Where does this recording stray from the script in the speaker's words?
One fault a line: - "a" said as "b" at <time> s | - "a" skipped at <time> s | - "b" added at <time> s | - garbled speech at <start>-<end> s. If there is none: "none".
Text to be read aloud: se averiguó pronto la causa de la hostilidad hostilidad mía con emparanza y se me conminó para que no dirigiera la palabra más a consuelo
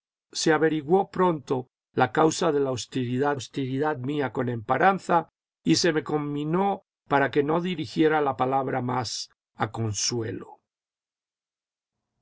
none